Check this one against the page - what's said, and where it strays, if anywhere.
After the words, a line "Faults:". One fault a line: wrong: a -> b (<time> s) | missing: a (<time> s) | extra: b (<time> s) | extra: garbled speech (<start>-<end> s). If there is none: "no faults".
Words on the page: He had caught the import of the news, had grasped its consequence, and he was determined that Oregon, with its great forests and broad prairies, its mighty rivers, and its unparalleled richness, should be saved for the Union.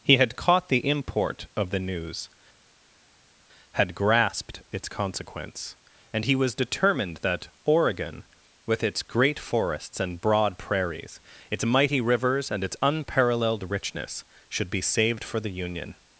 He had caught the import of the news, had grasped its consequence, and he was determined that Oregon, with its great forests and broad prairies, its mighty rivers, and its unparalleled richness, should be saved for the Union.
Faults:
no faults